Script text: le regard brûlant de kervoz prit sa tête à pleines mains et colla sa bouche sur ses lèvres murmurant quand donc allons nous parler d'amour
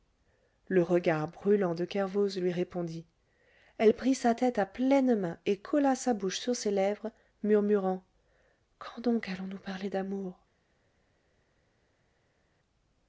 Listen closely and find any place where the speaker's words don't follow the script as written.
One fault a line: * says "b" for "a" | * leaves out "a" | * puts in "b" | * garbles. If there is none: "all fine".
* puts in "lui répondit elle"